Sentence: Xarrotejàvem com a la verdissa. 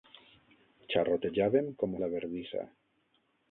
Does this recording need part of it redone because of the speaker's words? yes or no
no